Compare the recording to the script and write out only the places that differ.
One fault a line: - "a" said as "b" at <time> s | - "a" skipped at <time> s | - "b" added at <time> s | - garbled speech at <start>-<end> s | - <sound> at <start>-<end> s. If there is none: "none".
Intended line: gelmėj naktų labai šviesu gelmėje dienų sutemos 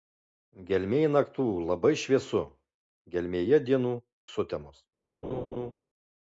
- laugh at 5.2-5.7 s